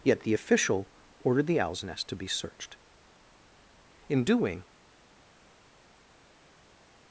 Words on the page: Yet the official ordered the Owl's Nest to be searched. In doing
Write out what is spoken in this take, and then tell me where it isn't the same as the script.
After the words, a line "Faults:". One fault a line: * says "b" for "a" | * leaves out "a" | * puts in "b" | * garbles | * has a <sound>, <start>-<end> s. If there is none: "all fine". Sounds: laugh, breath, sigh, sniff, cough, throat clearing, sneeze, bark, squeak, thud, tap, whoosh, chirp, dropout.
Yet the official ordered the Owl's Nest to be searched. In doing
Faults:
all fine